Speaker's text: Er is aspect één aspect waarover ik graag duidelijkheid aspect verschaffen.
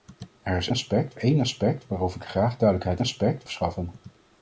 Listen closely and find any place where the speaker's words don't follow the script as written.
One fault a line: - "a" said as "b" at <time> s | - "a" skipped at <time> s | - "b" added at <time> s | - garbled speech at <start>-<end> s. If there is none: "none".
none